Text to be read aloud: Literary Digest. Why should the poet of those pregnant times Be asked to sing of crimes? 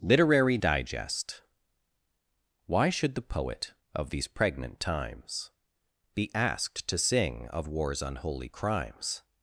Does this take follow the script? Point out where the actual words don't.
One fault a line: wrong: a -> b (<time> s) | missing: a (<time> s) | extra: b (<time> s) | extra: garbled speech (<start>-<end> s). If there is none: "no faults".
wrong: those -> these (4.1 s)
extra: war's unholy (7.7 s)